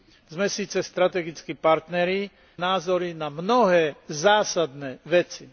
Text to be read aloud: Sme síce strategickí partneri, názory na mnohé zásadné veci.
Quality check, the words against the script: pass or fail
pass